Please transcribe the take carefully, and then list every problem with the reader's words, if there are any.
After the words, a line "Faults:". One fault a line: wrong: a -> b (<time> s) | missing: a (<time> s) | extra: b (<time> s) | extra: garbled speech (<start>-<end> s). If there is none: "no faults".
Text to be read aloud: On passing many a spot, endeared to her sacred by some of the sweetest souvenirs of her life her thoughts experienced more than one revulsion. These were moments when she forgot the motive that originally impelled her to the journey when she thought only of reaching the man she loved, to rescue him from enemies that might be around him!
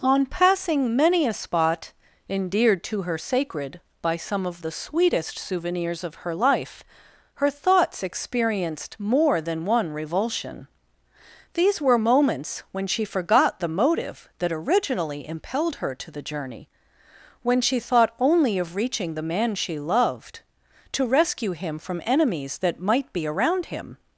On passing many a spot, endeared to her sacred by some of the sweetest souvenirs of her life her thoughts experienced more than one revulsion. These were moments when she forgot the motive that originally impelled her to the journey when she thought only of reaching the man she loved, to rescue him from enemies that might be around him!
Faults:
no faults